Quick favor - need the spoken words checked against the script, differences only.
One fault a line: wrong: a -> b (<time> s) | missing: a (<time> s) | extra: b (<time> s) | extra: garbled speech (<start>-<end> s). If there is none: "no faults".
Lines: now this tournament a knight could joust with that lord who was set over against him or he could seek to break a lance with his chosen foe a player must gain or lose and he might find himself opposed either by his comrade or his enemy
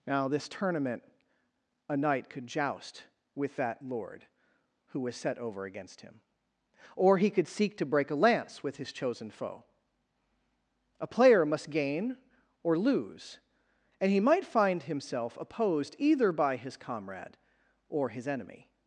no faults